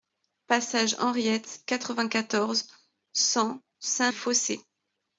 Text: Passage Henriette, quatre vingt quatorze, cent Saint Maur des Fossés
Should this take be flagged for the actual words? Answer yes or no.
yes